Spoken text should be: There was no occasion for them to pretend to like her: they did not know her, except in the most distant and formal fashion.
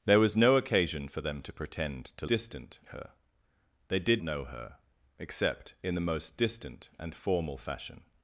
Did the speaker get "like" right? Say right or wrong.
wrong